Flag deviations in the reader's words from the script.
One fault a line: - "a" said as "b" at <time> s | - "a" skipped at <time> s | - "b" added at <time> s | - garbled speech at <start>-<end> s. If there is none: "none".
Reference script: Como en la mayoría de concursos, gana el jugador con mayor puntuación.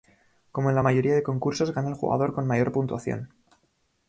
none